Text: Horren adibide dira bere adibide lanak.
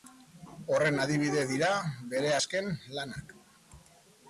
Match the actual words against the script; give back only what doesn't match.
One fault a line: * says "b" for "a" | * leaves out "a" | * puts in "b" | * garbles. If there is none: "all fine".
* says "azken" for "adibide"